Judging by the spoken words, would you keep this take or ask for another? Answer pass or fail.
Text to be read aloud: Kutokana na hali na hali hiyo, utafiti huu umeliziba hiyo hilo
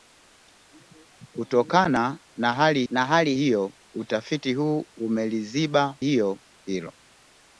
pass